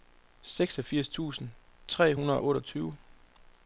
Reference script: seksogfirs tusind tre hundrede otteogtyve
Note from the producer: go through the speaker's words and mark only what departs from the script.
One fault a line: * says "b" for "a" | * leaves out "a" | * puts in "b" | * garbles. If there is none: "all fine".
all fine